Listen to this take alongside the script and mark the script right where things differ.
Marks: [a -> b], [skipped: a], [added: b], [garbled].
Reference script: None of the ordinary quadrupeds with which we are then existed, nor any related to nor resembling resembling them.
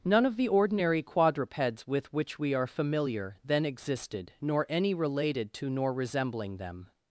None of the ordinary quadrupeds with which we are [added: familiar] then existed, nor any related to nor resembling [skipped: resembling] them.